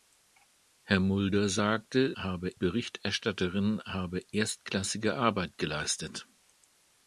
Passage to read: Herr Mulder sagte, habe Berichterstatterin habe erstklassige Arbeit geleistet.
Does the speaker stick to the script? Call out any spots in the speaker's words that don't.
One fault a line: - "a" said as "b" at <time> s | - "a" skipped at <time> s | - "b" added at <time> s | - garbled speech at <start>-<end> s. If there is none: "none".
none